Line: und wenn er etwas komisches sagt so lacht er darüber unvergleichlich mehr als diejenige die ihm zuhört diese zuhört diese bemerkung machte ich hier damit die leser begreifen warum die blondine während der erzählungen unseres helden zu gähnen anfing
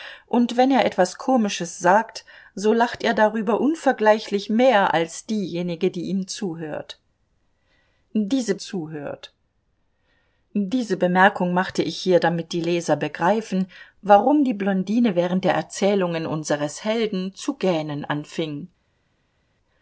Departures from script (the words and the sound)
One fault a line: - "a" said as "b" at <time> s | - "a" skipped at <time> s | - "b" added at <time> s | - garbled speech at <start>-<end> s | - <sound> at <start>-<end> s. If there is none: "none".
none